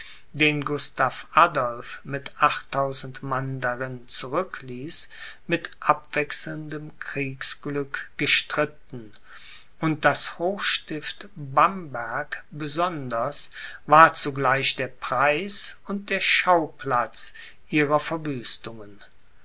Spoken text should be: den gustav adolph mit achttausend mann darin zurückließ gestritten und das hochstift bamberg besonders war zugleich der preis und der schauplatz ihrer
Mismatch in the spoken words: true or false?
true